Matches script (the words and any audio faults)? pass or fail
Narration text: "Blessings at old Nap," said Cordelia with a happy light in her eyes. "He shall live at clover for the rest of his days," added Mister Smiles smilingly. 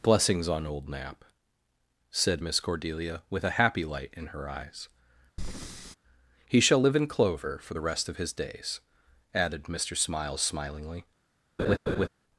fail